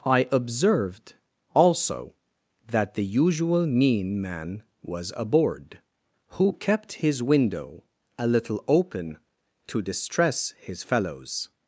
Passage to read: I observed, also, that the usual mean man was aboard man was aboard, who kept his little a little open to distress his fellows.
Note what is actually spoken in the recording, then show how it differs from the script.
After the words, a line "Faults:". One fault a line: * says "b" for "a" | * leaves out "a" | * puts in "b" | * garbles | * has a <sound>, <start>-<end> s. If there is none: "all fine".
I observed, also, that the usual mean man was aboard, who kept his window a little open to distress his fellows.
Faults:
* leaves out "man was aboard"
* says "window" for "little"